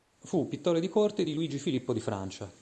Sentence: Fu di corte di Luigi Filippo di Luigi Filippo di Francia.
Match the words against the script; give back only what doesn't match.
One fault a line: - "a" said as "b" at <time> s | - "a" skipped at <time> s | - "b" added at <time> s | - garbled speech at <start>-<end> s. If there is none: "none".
- "pittore" added at 0.5 s
- "Luigi Filippo di" skipped at 2.0 s